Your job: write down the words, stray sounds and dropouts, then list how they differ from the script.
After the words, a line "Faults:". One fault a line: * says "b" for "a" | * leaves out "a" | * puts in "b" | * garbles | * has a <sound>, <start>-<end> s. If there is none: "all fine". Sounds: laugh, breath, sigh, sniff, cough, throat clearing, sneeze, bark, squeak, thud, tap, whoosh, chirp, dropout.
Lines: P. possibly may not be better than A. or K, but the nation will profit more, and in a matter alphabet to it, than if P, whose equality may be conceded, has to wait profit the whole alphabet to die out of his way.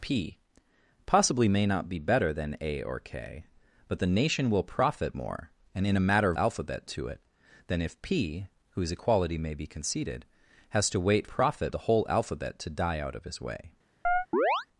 P. possibly may not be better than A. or K, but the nation will profit more, and in a matter alphabet to it, than if P, whose equality may be conceded, has to wait profit the whole alphabet to die out of his way.
Faults:
* has a chirp, 14.0-14.7 s